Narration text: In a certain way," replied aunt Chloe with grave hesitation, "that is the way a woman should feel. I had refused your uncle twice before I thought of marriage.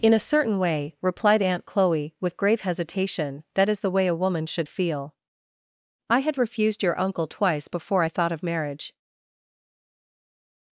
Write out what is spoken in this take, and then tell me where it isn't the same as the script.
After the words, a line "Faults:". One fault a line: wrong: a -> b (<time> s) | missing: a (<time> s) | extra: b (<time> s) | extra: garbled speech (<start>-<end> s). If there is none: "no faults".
In a certain way," replied aunt Chloe with grave hesitation, "that is the way a woman should feel. I had refused your uncle twice before I thought of marriage.
Faults:
no faults